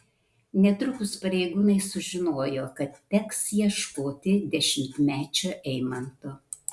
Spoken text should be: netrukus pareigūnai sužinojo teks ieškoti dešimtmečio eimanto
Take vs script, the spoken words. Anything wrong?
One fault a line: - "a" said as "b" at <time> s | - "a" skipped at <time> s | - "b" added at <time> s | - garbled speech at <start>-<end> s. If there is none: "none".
- "kad" added at 2.8 s